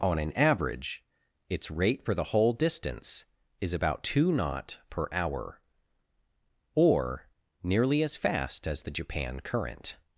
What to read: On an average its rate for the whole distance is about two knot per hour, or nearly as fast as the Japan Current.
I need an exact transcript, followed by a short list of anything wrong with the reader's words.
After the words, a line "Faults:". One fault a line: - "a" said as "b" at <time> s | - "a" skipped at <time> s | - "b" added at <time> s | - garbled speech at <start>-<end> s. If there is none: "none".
On an average its rate for the whole distance is about two knot per hour, or nearly as fast as the Japan Current.
Faults:
none